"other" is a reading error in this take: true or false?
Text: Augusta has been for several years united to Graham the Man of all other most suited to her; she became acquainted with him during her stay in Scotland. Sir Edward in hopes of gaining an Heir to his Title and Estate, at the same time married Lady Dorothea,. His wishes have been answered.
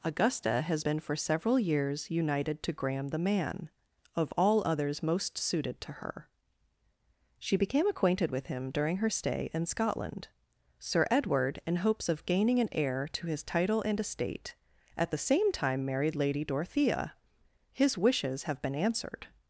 true